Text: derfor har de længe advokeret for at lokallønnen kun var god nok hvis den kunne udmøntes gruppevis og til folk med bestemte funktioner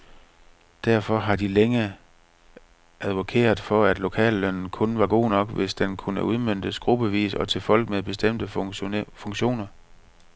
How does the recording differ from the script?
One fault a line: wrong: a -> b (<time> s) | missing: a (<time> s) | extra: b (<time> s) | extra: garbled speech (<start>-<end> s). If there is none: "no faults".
no faults